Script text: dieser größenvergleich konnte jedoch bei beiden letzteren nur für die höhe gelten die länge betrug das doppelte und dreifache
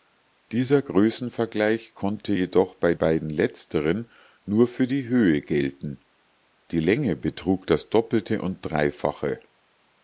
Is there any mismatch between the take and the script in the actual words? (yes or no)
no